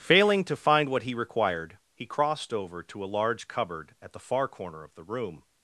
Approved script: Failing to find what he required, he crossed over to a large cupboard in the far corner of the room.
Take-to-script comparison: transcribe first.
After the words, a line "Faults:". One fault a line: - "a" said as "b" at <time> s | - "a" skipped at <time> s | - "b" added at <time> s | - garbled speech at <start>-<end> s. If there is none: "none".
Failing to find what he required, he crossed over to a large cupboard at the far corner of the room.
Faults:
- "in" said as "at" at 4.0 s